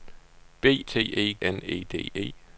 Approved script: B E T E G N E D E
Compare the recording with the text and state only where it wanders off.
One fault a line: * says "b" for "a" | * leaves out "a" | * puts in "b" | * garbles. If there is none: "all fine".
* leaves out "E"
* leaves out "G"